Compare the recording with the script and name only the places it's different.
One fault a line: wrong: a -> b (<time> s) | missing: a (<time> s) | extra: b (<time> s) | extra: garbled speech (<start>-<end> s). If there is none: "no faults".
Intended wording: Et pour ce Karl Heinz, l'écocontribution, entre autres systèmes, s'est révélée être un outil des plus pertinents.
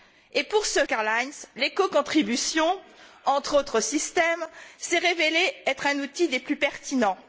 no faults